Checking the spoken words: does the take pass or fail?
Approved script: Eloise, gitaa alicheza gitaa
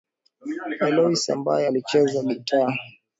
fail